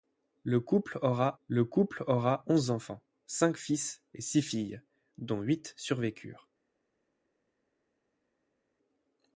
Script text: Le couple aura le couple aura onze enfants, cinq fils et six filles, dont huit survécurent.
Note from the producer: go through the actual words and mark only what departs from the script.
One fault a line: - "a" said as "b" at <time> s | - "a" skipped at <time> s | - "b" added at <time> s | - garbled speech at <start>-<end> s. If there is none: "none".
none